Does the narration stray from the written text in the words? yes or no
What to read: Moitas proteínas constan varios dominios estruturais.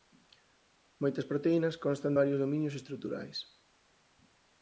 no